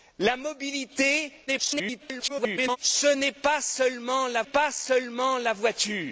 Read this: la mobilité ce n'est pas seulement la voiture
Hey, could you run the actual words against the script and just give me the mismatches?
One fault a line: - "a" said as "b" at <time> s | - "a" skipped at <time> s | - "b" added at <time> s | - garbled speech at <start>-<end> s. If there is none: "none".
- garbled speech at 1.5-2.8 s
- "pas seulement la" added at 4.4 s